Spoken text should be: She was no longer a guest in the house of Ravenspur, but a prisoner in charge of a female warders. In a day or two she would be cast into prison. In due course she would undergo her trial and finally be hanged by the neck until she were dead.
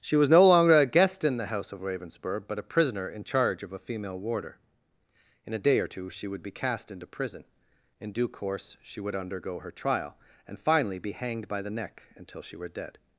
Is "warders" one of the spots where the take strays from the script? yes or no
yes